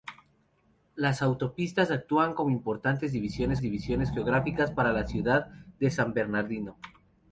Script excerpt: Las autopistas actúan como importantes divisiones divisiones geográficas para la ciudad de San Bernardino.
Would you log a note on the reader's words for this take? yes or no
no